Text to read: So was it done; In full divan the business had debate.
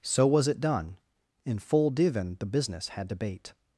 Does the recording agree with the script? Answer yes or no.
yes